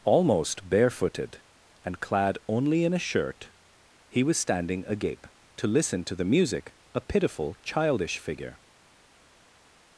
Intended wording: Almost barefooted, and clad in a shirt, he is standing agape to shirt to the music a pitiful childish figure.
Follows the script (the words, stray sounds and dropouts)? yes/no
no